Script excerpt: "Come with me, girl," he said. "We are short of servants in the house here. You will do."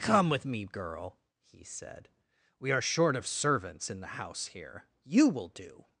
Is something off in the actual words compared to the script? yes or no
no